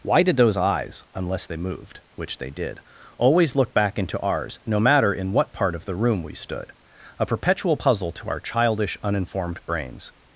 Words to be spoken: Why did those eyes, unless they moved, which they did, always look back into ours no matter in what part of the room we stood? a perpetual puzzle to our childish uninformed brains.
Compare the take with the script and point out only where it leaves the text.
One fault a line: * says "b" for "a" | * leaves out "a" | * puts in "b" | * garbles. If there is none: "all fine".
all fine